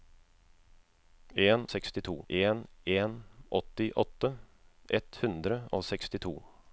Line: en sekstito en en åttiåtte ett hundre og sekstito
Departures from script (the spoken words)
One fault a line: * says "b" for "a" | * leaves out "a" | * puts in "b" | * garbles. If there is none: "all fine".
all fine